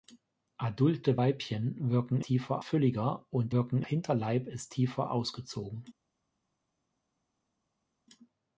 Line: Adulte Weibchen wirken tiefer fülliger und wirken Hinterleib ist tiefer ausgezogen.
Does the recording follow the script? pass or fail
pass